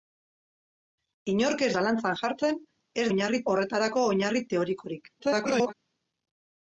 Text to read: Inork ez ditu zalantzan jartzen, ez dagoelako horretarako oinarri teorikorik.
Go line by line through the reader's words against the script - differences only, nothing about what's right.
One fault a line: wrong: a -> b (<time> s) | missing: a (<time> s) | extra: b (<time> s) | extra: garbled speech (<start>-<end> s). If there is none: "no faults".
missing: ditu (1.7 s)
wrong: dagoelako -> oinarri (3.1 s)
extra: garbled speech (5.2-5.7 s)